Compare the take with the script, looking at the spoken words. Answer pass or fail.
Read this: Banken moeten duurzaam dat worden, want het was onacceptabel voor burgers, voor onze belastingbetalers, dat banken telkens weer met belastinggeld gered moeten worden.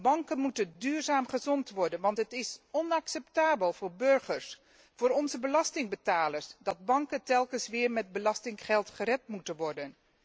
fail